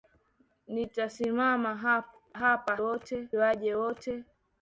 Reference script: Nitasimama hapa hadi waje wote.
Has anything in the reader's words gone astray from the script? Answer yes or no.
yes